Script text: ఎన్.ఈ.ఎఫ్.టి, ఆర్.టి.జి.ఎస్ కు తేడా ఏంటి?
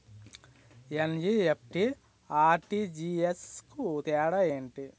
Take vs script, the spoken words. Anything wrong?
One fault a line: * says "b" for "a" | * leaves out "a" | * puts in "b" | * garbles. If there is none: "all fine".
all fine